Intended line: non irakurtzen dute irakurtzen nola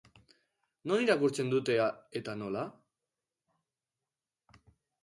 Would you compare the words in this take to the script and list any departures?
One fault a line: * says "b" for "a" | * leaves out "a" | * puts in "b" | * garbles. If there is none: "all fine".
* says "eta" for "irakurtzen"